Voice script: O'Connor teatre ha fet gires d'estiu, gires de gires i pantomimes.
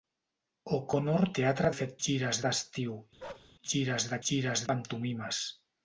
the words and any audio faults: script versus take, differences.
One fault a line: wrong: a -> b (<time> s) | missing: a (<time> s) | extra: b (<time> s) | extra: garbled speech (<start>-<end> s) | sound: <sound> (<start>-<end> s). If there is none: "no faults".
sound: bark (3.2-3.5 s)